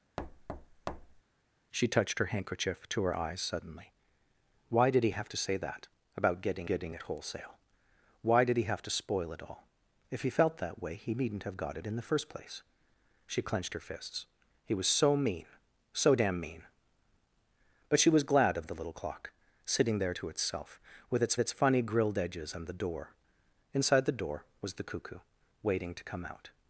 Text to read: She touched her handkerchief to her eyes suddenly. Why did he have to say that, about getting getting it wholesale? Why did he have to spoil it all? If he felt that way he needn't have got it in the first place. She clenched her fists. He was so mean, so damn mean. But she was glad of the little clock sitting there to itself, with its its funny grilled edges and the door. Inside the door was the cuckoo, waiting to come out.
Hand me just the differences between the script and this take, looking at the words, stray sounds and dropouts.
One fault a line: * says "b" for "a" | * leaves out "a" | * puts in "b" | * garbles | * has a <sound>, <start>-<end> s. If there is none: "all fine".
* has a thud, 0.2-1.2 s